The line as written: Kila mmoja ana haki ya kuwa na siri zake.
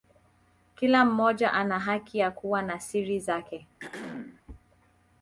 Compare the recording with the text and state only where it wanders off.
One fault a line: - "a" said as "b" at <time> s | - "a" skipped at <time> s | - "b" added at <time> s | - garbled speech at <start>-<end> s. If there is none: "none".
none